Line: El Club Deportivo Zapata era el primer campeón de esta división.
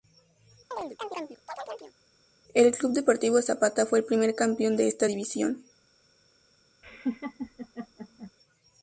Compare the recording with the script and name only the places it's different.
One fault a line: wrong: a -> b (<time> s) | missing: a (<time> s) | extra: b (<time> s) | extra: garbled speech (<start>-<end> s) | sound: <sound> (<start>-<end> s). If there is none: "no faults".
sound: chirp (0.7-1.9 s)
wrong: era -> fue (3.9 s)
sound: laugh (6.8-8.3 s)